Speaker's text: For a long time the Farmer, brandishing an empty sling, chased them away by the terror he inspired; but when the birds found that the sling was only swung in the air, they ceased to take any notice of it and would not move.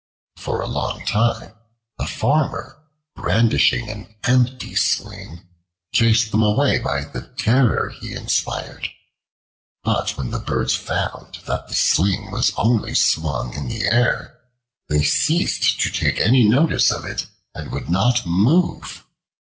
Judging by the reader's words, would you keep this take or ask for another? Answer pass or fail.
pass